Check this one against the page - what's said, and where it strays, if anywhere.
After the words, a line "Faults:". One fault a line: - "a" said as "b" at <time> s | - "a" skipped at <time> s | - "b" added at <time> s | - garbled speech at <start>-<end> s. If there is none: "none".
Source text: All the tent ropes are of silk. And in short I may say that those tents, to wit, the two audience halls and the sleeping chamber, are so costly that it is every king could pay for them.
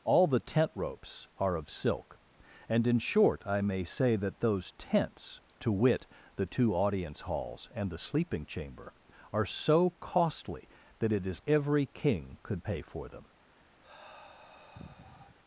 All the tent ropes are of silk. And in short I may say that those tents, to wit, the two audience halls and the sleeping chamber, are so costly that it is every king could pay for them.
Faults:
none